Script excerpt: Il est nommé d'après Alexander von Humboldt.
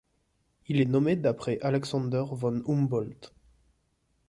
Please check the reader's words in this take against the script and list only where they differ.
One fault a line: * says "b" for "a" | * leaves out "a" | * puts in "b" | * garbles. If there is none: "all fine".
all fine